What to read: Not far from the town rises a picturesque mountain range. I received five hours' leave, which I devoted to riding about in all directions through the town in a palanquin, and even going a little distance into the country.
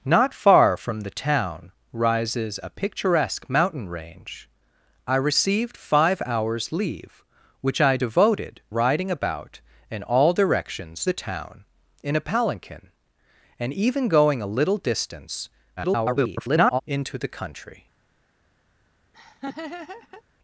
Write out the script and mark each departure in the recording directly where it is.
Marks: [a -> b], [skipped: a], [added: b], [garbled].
Not far from the town rises a picturesque mountain range. I received five hours' leave, which I devoted [skipped: to] riding about in all directions [skipped: through] the town in a palanquin, and even going a little distance [garbled] into the country.